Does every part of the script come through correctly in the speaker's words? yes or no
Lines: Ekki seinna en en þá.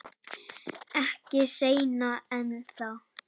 no